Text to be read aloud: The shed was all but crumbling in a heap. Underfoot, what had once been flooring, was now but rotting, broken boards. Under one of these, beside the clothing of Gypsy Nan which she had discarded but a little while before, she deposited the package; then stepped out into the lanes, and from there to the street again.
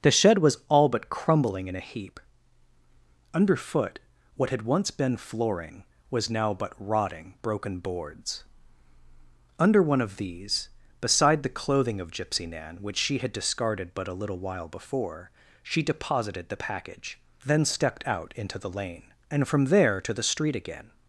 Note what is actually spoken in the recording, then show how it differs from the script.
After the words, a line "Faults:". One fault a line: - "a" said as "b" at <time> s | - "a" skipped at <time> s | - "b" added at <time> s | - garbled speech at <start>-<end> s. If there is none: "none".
The shed was all but crumbling in a heap. Underfoot, what had once been flooring, was now but rotting, broken boards. Under one of these, beside the clothing of Gypsy Nan which she had discarded but a little while before, she deposited the package; then stepped out into the lane, and from there to the street again.
Faults:
- "lanes" said as "lane" at 18.7 s